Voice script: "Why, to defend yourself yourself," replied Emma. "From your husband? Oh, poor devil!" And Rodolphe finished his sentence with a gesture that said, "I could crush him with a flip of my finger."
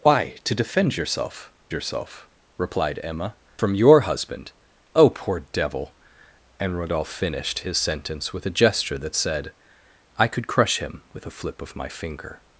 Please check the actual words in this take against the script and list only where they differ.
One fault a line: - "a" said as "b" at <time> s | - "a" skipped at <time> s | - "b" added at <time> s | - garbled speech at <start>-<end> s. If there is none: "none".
none